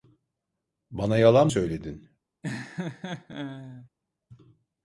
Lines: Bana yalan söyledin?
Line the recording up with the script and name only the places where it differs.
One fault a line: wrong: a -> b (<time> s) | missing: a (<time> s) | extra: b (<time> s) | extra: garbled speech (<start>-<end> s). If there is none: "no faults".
no faults